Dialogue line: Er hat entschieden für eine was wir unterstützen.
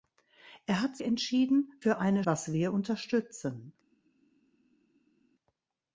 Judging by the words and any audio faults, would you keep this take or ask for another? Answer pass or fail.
pass